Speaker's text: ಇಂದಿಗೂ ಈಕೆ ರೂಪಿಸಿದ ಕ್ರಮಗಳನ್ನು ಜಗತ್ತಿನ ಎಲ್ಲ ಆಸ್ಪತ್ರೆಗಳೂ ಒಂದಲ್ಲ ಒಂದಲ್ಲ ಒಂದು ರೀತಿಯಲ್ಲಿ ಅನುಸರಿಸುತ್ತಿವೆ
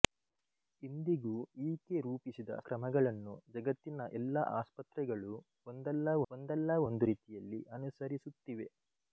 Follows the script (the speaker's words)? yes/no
yes